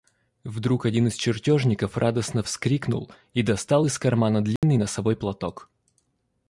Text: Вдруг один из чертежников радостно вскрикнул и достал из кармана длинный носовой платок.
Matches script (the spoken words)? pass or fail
pass